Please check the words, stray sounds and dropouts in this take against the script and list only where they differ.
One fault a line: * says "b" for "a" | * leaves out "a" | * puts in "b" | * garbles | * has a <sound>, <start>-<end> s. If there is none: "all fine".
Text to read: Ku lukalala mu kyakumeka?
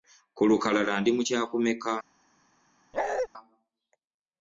* puts in "ndi"
* has a bark, 2.9-3.3 s